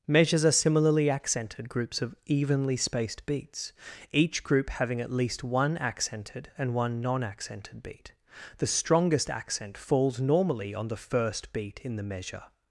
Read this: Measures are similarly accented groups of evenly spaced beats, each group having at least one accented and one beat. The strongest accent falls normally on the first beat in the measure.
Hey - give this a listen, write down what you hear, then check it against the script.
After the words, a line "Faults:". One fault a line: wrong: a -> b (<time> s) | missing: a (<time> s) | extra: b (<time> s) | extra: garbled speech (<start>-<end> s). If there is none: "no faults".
Measures are similarly accented groups of evenly spaced beats, each group having at least one accented and one non accented beat. The strongest accent falls normally on the first beat in the measure.
Faults:
extra: non accented (7.0 s)